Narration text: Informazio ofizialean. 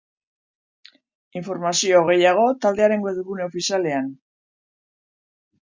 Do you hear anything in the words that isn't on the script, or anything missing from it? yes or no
yes